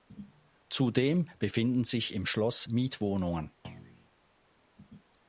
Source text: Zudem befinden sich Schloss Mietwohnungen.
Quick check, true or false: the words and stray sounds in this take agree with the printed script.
false